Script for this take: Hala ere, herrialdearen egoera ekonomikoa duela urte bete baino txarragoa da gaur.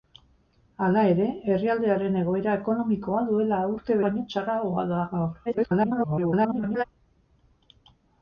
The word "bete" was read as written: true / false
false